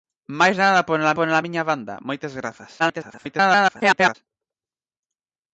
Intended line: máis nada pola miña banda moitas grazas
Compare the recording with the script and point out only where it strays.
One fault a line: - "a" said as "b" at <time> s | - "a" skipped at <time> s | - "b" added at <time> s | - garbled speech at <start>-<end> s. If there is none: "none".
- "pola" added at 1.2 s
- garbled speech at 2.8-4.1 s